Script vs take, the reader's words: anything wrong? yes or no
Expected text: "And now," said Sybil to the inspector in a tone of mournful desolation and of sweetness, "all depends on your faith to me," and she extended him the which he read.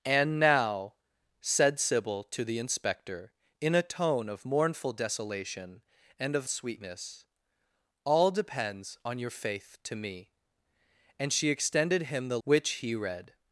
no